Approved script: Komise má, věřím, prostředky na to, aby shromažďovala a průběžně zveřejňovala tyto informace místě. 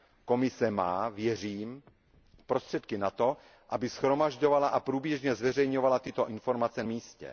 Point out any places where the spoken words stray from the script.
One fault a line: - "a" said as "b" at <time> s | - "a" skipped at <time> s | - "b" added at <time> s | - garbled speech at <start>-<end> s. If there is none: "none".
none